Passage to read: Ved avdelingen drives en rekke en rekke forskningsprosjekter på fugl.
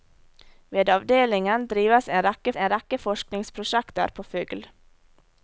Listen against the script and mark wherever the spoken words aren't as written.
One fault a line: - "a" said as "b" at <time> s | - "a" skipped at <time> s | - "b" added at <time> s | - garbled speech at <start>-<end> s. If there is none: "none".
none